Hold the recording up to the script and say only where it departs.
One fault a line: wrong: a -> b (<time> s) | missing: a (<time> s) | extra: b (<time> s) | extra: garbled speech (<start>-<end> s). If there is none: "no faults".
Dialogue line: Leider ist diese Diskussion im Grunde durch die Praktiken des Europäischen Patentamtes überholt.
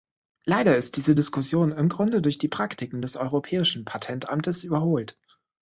no faults